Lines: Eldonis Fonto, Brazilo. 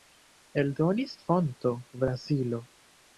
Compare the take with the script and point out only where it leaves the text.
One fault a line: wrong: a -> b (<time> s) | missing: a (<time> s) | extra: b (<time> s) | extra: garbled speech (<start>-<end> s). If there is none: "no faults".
no faults